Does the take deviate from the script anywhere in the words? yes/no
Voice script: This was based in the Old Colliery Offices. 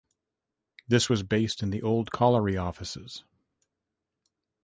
no